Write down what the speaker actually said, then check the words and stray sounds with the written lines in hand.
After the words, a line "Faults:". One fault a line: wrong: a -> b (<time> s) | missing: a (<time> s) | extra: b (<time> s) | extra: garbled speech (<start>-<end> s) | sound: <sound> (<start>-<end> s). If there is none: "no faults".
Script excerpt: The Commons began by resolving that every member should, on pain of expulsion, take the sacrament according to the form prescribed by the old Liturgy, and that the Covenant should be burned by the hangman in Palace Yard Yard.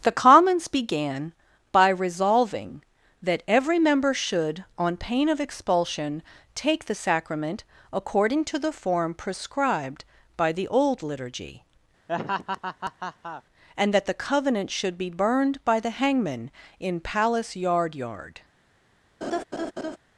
The Commons began by resolving that every member should, on pain of expulsion, take the sacrament according to the form prescribed by the old Liturgy, and that the Covenant should be burned by the hangman in Palace Yard Yard.
Faults:
sound: laugh (12.1-13.4 s)
sound: laugh (19.2-20.0 s)